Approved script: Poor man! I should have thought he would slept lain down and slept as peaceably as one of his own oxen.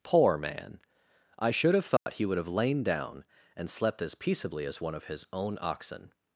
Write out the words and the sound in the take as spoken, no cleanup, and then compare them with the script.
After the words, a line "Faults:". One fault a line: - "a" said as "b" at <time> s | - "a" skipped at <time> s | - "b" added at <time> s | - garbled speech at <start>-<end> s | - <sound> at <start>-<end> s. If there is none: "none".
Poor man! I should have thought he would have lain down and slept as peaceably as one of his own oxen.
Faults:
- dropout at 2.0-2.1 s
- "slept" said as "have" at 2.4 s